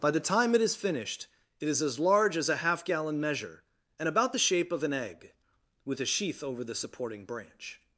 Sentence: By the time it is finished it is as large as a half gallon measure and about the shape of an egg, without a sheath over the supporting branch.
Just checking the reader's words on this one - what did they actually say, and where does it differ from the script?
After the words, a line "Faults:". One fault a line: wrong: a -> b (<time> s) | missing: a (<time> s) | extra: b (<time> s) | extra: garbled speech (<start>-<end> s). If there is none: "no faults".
By the time it is finished it is as large as a half gallon measure and about the shape of an egg, with a sheath over the supporting branch.
Faults:
wrong: without -> with (5.8 s)